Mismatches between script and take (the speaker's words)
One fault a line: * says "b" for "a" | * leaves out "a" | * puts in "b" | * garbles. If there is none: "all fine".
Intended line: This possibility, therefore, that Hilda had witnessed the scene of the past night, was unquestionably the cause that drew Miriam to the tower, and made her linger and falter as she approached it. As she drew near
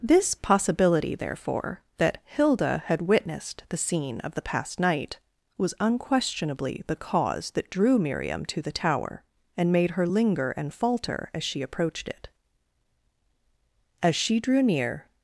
all fine